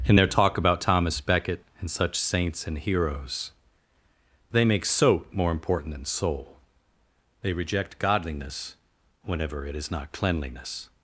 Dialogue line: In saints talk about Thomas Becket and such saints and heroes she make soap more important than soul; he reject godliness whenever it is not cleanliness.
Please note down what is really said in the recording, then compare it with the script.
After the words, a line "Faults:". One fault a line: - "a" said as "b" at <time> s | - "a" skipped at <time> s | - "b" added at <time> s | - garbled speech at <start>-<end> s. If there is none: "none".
In their talk about Thomas Becket and such saints and heroes they make soap more important than soul; they reject godliness whenever it is not cleanliness.
Faults:
- "saints" said as "their" at 0.1 s
- "she" said as "they" at 4.5 s
- "he" said as "they" at 7.4 s